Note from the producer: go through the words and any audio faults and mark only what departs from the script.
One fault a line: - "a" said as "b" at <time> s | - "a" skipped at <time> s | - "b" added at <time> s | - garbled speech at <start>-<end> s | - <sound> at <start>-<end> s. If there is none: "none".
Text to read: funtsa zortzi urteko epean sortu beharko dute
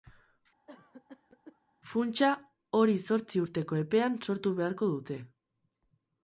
- cough at 0.7-1.6 s
- "hori" added at 2.8 s